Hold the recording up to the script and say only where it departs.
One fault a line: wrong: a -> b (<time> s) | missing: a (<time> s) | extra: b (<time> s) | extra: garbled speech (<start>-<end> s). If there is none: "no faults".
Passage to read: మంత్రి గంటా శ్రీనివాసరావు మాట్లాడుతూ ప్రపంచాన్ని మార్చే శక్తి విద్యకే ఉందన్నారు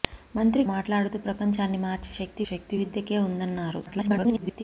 missing: గంటా శ్రీనివాసరావు (0.6 s)
extra: శక్తి (2.5 s)
extra: garbled speech (3.9-4.6 s)